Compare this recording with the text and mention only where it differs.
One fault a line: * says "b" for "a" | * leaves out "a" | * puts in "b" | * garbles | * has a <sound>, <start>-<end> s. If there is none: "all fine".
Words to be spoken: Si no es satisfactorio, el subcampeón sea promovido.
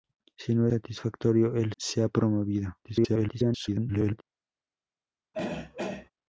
* leaves out "es"
* leaves out "subcampeón"
* garbles
* has a throat clearing, 5.3-6.1 s